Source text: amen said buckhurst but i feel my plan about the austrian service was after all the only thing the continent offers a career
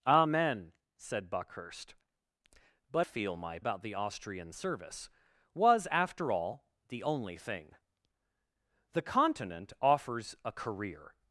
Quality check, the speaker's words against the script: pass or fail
fail